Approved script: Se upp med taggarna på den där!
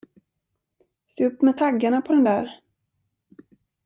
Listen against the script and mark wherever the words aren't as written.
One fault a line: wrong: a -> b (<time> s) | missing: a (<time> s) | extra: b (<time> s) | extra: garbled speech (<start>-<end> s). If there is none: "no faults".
no faults